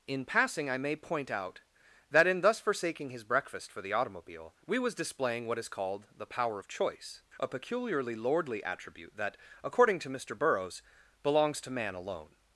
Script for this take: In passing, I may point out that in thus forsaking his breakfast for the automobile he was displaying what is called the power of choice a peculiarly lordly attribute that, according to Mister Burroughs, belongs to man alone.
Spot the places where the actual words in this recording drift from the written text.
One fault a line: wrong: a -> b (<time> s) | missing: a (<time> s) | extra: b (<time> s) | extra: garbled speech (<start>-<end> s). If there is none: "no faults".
wrong: he -> we (4.7 s)